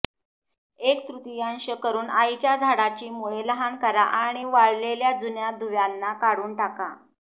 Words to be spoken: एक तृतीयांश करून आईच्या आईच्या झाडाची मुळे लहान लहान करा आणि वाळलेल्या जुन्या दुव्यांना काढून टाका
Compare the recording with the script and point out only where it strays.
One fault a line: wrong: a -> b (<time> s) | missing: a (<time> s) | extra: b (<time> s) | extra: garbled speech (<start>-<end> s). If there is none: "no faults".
missing: आईच्या (2.5 s)
missing: लहान (3.8 s)